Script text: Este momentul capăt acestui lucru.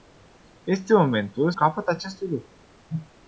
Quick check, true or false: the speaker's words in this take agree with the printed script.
true